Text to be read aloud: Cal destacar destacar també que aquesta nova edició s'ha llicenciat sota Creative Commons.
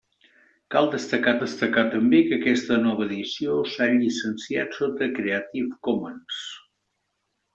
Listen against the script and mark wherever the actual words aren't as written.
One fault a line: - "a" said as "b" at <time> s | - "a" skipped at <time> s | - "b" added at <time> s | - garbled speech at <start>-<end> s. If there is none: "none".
none